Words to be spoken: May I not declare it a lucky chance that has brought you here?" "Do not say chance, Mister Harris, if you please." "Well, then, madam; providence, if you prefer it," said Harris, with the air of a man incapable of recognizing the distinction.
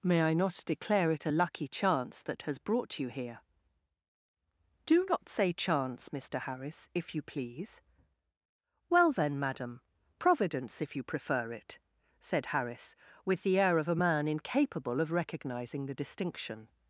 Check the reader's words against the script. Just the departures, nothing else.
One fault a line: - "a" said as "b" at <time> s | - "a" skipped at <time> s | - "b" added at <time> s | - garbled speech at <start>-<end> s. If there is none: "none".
none